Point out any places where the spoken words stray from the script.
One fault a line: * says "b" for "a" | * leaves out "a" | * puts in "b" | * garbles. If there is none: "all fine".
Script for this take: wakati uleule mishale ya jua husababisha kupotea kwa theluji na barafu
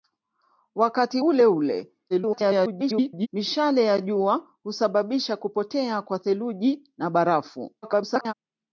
* garbles
* garbles